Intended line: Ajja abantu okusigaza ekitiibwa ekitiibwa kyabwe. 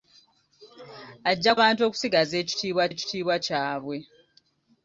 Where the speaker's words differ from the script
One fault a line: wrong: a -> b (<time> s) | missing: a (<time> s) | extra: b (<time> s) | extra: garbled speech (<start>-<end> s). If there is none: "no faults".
no faults